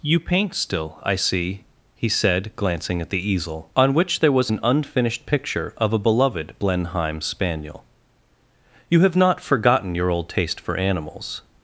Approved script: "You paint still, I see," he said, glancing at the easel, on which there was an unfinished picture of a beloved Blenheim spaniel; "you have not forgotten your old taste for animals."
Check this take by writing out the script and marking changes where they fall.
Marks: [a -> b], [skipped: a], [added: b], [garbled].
"You paint still, I see," he said, glancing at the easel, on which there was an unfinished picture of a beloved Blenheim spaniel; "you have not forgotten your old taste for animals."